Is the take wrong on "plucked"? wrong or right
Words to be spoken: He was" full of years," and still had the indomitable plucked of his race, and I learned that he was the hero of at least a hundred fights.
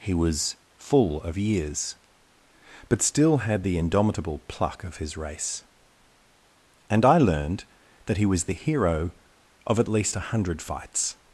wrong